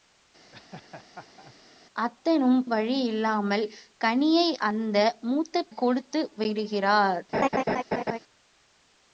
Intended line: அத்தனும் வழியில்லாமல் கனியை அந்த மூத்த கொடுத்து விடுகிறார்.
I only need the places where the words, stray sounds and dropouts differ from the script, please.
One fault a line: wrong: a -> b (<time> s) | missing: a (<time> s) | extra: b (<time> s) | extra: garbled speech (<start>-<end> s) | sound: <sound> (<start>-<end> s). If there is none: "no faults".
sound: laugh (0.5-1.5 s)
sound: laugh (7.3-8.2 s)